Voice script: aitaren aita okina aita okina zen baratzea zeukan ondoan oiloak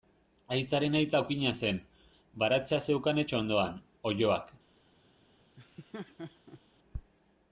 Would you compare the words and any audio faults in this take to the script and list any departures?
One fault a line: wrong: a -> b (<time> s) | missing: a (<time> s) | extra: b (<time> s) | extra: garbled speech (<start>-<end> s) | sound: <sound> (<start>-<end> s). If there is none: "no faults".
missing: aita okina (1.5 s)
extra: etxe (3.2 s)
sound: laugh (5.6-6.6 s)